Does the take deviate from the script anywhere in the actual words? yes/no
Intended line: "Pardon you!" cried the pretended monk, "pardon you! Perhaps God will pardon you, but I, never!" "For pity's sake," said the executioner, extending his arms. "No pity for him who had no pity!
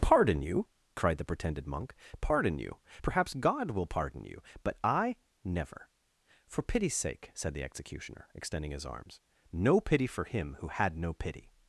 no